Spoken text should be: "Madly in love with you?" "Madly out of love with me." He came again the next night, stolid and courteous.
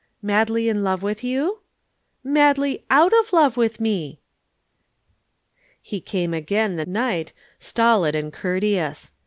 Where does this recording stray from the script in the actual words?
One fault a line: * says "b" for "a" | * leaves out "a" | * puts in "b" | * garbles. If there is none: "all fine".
* leaves out "next"